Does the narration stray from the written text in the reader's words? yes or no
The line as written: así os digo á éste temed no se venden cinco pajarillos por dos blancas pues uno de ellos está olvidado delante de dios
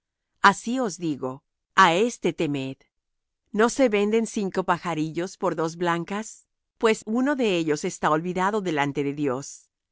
no